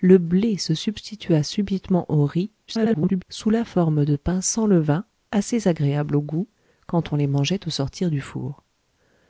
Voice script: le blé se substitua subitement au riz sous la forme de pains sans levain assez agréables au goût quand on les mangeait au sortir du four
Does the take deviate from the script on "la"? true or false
false